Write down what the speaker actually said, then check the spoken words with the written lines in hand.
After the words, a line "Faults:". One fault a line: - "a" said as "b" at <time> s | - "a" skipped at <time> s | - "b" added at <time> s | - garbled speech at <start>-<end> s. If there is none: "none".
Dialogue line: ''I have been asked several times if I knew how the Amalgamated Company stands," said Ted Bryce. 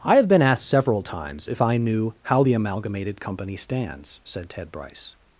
''I have been asked several times if I knew how the Amalgamated Company stands," said Ted Bryce.
Faults:
none